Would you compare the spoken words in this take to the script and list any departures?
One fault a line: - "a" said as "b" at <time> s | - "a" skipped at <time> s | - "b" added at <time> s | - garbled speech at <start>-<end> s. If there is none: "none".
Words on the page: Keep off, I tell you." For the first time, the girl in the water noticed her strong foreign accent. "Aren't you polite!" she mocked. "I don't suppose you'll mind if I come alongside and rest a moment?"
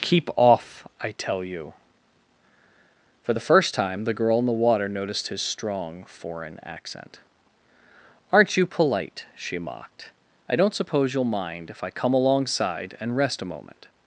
- "her" said as "his" at 5.3 s